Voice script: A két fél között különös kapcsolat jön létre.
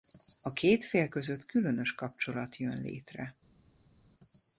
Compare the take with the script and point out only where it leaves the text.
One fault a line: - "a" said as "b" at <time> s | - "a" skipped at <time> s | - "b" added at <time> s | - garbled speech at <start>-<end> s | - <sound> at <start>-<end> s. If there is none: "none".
none